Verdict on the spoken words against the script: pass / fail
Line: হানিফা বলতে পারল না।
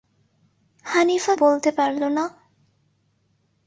pass